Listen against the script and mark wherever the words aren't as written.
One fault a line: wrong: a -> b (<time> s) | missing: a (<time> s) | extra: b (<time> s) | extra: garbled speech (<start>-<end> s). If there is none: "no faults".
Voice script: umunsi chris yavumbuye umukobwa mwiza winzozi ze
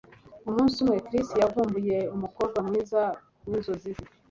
extra: umwe (0.8 s)